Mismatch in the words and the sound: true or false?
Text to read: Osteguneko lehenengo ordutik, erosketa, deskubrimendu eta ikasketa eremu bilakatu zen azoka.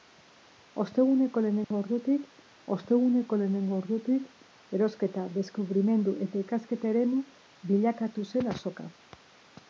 true